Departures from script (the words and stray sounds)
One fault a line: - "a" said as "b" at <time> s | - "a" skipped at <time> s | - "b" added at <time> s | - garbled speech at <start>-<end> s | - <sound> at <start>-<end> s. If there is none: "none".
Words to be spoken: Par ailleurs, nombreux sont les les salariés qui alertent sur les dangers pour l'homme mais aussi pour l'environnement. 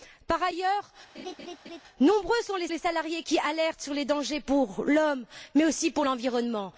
- laugh at 1.1-1.8 s